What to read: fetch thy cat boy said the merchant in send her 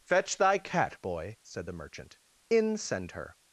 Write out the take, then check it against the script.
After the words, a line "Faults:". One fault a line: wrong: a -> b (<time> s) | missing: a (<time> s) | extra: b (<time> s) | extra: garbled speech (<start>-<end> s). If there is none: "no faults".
fetch thy cat boy said the merchant in send her
Faults:
no faults